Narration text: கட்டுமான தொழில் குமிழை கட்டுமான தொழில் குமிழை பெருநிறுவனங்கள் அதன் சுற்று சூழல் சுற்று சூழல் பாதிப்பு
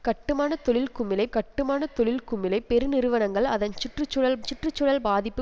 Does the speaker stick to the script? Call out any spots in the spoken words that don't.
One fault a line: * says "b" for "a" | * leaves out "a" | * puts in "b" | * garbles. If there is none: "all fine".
all fine